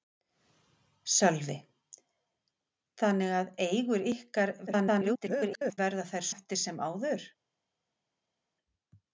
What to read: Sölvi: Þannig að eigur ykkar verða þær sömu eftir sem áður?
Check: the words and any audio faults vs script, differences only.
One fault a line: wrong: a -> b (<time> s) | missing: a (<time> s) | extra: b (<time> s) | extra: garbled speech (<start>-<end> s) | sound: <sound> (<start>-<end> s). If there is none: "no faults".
extra: garbled speech (4.7-5.8 s)
missing: sömu (6.3 s)